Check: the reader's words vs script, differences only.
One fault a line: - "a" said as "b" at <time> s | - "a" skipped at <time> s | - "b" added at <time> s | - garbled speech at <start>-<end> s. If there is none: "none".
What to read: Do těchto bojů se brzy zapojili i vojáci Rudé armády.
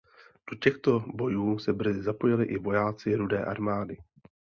none